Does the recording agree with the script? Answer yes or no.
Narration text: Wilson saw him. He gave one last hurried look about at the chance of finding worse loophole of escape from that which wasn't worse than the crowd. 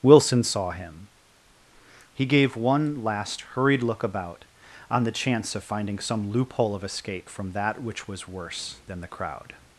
no